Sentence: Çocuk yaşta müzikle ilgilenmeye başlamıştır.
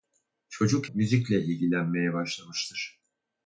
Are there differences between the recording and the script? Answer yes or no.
yes